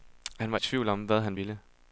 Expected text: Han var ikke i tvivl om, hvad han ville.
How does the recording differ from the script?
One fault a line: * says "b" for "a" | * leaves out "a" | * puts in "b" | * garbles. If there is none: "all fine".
* leaves out "ikke"